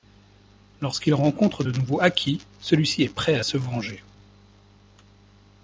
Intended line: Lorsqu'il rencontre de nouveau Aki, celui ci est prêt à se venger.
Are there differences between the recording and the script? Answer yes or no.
no